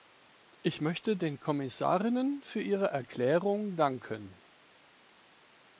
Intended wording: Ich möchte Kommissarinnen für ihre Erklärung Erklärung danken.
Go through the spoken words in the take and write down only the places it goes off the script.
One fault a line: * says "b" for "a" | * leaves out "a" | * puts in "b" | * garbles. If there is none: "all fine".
* puts in "den"
* leaves out "Erklärung"